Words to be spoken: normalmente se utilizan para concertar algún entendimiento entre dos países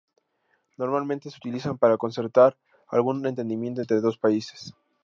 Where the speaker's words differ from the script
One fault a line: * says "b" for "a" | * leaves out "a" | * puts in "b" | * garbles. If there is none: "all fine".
all fine